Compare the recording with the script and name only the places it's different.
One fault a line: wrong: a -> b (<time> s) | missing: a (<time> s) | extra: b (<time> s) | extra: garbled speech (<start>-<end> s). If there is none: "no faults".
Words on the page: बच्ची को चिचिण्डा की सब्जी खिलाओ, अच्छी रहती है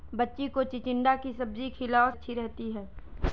no faults